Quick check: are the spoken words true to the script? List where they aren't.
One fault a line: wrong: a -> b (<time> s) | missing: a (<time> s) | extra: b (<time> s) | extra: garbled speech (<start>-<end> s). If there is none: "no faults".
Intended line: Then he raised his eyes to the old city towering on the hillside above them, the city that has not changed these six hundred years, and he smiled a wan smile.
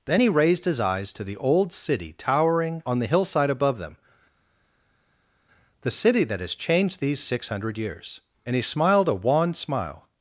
missing: not (6.5 s)